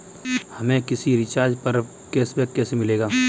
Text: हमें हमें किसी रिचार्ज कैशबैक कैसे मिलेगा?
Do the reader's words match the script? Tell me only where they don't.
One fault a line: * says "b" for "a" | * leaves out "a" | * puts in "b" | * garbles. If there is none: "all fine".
* leaves out "हमें"
* puts in "पर"